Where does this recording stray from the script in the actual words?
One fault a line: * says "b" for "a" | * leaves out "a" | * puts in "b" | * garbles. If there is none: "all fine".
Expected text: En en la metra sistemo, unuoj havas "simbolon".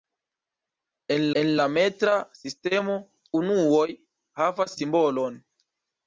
all fine